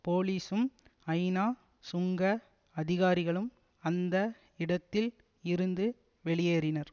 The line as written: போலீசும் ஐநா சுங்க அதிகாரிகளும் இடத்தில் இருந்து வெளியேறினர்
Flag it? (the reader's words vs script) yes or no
yes